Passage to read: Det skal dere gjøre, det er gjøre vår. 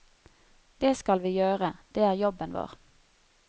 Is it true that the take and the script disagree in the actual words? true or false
true